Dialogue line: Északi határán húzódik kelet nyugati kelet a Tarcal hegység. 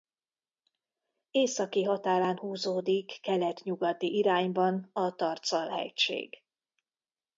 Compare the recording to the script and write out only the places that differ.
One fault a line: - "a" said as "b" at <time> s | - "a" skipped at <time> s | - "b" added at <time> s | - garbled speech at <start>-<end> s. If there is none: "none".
- "kelet" said as "irányban" at 4.2 s